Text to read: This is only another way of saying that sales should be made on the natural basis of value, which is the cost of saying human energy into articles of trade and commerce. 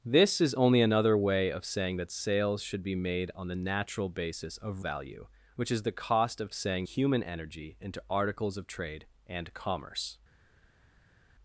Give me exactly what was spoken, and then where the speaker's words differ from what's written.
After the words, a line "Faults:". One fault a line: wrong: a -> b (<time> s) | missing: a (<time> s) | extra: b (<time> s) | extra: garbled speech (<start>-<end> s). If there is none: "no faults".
This is only another way of saying that sales should be made on the natural basis of value, which is the cost of saying human energy into articles of trade and commerce.
Faults:
no faults